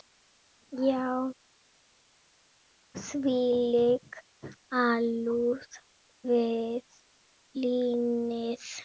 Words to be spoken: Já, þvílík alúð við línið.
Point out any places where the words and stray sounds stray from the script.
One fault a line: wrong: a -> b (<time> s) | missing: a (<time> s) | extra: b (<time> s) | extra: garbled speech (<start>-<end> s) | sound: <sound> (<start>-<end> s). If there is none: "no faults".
no faults